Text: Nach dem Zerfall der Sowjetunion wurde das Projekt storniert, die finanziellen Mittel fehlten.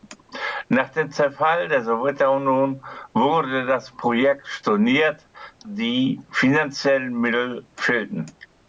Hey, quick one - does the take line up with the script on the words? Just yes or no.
yes